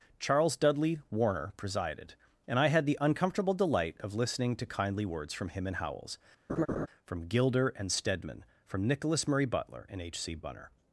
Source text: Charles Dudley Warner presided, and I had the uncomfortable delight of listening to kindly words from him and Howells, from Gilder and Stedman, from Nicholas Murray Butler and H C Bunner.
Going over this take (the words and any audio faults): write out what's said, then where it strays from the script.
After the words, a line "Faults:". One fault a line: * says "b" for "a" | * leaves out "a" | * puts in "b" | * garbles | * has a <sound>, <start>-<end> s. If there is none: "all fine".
Charles Dudley Warner presided, and I had the uncomfortable delight of listening to kindly words from him and Howells, from Gilder and Stedman, from Nicholas Murray Butler and H C Bunner.
Faults:
* has a laugh, 6.5-6.9 s